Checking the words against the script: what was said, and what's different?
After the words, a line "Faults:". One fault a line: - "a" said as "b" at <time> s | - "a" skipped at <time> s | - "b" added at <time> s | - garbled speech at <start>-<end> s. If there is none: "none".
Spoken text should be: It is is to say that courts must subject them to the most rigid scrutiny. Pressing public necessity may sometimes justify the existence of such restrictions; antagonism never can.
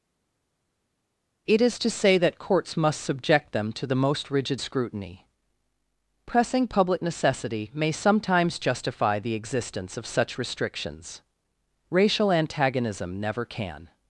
It is to say that courts must subject them to the most rigid scrutiny. Pressing public necessity may sometimes justify the existence of such restrictions; racial antagonism never can.
Faults:
- "is" skipped at 1.8 s
- "racial" added at 11.9 s